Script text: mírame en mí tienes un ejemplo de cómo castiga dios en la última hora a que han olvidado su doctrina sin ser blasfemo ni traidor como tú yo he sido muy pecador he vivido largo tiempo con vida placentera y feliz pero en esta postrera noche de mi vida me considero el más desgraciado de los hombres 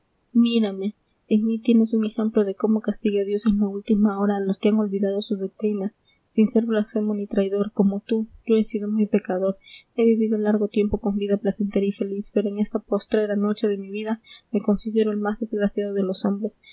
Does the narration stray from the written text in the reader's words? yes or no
yes